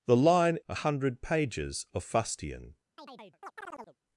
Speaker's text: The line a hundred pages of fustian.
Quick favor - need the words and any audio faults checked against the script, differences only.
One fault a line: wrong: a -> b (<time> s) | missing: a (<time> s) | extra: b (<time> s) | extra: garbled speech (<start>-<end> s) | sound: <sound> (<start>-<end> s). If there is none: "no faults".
sound: chirp (3.0-4.0 s)